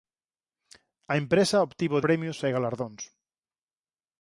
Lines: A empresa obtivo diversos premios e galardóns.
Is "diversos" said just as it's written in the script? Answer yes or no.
no